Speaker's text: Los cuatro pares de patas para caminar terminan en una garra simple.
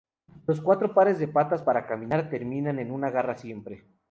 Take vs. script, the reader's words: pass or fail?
pass